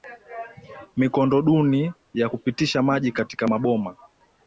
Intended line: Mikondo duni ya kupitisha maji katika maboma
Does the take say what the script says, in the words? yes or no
yes